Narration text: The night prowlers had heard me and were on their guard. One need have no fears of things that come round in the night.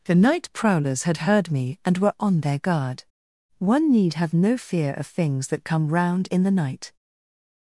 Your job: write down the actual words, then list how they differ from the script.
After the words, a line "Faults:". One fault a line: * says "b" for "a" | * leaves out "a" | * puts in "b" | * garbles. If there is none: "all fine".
The night prowlers had heard me and were on their guard. One need have no fear of things that come round in the night.
Faults:
* says "fear" for "fears"